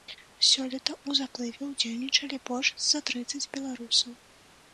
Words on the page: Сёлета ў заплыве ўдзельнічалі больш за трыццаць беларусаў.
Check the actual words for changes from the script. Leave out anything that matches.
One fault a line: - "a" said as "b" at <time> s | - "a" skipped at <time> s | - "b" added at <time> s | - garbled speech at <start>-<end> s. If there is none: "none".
none